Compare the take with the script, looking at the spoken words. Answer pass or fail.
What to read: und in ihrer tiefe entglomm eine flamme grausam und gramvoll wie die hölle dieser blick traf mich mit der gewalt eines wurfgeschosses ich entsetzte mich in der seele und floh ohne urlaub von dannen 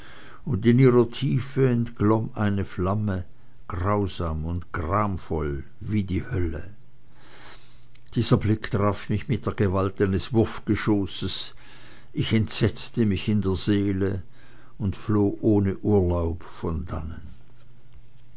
pass